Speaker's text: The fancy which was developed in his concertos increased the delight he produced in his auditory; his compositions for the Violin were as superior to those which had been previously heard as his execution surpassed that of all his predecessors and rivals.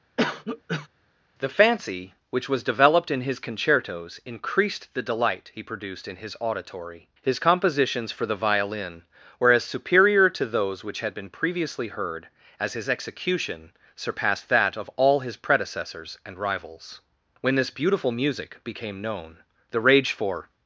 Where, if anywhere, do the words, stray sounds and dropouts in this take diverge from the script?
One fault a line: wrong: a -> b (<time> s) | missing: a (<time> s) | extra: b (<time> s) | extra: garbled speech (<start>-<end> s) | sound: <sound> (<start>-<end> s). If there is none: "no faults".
sound: cough (0.2-0.9 s)
extra: When this beautiful music became known the rage for (17.4 s)